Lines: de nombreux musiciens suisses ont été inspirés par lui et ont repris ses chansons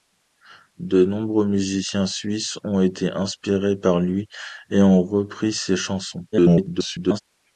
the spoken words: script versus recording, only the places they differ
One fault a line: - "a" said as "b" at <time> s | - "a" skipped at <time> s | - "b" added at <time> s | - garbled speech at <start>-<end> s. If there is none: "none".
- garbled speech at 6.3-7.2 s